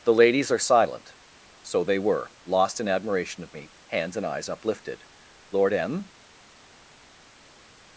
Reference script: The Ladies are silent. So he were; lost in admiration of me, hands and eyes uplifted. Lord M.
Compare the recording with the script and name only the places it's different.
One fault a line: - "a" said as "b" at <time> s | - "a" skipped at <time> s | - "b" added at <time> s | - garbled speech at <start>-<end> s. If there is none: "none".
- "he" said as "they" at 1.8 s